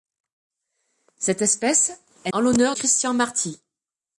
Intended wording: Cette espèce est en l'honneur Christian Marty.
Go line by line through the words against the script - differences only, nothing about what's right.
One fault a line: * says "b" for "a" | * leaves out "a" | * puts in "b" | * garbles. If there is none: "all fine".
all fine